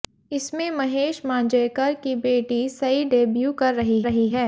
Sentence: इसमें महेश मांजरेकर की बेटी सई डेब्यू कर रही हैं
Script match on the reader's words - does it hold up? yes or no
no